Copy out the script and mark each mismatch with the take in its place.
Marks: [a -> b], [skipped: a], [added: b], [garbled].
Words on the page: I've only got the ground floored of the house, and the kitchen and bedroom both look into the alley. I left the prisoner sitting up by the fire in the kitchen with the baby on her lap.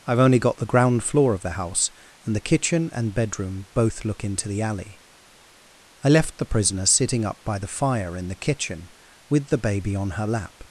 I've only got the ground [floored -> floor] of the house, and the kitchen and bedroom both look into the alley. I left the prisoner sitting up by the fire in the kitchen with the baby on her lap.